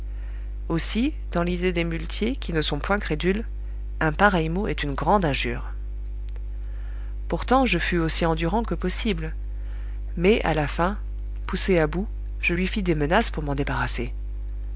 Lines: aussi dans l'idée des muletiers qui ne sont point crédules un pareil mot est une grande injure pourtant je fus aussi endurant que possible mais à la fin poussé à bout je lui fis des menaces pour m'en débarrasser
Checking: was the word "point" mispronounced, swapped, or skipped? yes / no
no